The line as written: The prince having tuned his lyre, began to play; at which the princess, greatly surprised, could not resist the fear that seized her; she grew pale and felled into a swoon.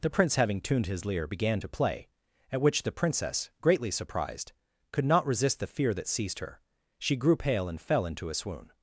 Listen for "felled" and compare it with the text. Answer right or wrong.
wrong